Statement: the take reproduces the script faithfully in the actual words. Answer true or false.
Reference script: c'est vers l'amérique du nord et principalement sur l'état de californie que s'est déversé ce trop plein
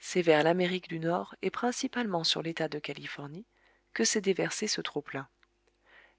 true